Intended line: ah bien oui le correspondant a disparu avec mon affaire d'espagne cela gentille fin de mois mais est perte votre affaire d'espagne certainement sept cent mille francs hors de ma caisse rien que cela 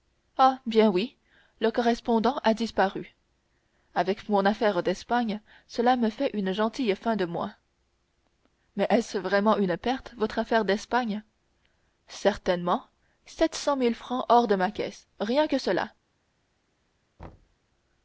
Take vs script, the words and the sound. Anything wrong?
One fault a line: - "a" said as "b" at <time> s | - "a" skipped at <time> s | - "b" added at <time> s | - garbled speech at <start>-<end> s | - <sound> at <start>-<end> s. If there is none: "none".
- "me fait une" added at 6.0 s
- "ce vraiment une" added at 9.0 s
- thud at 17.2-17.6 s